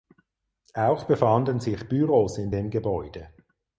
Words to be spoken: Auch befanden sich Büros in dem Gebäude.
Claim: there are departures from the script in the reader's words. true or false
false